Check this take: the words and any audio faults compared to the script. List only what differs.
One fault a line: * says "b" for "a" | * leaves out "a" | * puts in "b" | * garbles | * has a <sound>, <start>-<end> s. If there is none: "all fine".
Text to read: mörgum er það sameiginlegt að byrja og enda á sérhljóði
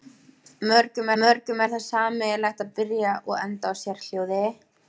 * puts in "mörgum"